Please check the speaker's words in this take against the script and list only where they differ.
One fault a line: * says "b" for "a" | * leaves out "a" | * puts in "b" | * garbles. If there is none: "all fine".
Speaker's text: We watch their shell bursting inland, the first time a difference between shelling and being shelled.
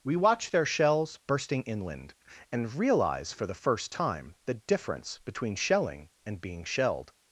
* says "shells" for "shell"
* puts in "and realize for"
* says "the" for "a"